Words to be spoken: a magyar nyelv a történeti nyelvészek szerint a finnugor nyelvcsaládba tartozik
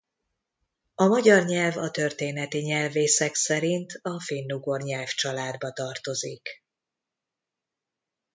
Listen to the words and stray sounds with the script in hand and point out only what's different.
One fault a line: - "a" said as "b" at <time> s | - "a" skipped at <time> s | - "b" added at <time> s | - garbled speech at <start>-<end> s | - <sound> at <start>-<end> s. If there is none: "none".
none